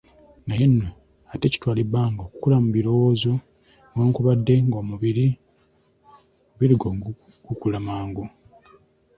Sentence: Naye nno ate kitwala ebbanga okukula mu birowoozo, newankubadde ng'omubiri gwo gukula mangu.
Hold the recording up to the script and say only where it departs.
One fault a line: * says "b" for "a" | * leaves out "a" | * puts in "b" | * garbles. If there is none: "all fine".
all fine